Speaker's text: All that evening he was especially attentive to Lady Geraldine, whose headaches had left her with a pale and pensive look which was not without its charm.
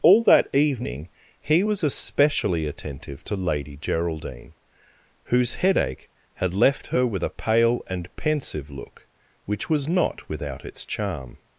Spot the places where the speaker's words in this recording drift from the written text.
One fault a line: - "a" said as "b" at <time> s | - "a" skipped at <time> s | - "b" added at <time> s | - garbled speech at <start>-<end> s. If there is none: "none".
- "headaches" said as "headache" at 5.5 s